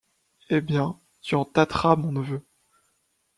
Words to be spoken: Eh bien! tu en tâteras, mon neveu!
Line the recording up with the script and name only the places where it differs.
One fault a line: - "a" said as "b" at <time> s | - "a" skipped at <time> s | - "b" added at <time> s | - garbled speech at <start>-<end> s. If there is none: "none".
none